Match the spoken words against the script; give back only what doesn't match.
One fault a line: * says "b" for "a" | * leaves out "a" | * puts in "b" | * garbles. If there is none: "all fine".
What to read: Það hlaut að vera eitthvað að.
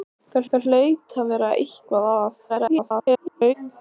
* puts in "það"
* garbles